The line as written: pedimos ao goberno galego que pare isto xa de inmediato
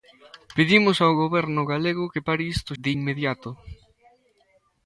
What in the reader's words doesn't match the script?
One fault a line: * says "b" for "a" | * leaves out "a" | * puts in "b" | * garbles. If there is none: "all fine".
* leaves out "xa"